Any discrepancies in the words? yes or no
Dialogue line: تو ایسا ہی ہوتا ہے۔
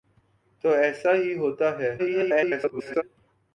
yes